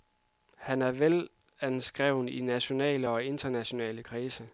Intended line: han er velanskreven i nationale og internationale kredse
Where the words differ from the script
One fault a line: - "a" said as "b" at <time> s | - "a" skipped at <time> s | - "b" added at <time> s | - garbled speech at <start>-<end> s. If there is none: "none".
none